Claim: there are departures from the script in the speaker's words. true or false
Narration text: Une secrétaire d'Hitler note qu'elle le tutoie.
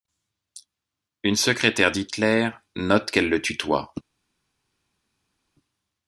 false